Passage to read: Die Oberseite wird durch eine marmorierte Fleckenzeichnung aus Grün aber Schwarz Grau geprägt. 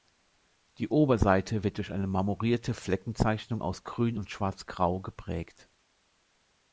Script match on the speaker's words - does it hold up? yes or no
no